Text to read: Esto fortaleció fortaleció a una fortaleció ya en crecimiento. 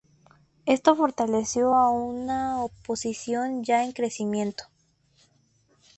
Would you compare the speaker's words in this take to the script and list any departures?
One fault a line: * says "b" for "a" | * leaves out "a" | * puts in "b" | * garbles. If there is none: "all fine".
* leaves out "fortaleció"
* says "oposición" for "fortaleció"